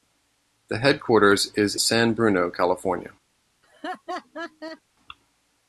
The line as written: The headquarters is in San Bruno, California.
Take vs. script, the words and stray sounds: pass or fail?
fail